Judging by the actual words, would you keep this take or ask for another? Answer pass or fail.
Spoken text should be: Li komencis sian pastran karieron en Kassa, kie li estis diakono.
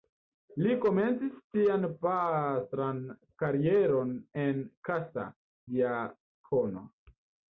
fail